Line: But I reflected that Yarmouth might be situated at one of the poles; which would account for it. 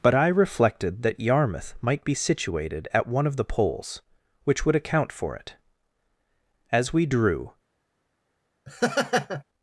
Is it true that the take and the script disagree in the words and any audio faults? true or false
true